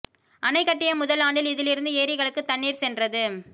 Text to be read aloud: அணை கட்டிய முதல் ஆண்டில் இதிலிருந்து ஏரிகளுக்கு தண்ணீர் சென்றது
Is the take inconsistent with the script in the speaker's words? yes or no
no